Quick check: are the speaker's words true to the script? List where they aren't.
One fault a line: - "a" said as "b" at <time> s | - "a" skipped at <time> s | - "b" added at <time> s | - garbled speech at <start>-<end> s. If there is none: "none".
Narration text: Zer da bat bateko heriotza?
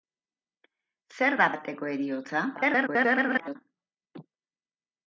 - "bat" skipped at 1.5 s
- garbled speech at 2.5-3.6 s